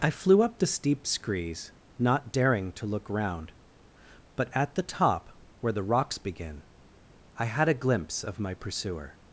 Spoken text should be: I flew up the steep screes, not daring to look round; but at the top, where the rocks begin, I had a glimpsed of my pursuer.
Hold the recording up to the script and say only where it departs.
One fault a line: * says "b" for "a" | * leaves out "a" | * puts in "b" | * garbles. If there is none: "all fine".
* says "glimpse" for "glimpsed"